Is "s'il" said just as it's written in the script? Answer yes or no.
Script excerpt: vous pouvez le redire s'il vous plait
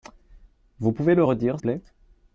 no